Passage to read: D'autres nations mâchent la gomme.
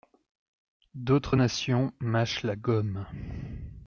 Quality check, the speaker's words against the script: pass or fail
pass